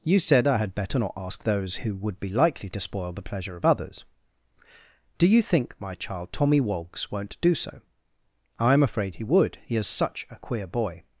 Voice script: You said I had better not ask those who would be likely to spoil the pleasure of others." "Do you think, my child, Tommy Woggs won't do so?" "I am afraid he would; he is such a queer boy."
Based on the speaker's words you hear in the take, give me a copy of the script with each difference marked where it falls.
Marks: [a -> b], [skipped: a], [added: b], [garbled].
You said I had better not ask those who would be likely to spoil the pleasure of others." "Do you think, my child, Tommy Woggs won't do so?" "I am afraid he would; he is such a queer boy."